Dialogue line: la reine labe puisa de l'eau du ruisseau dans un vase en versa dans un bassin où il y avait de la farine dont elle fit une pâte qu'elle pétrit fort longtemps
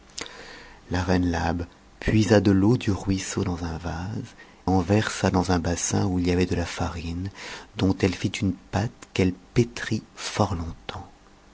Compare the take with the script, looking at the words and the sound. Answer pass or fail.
pass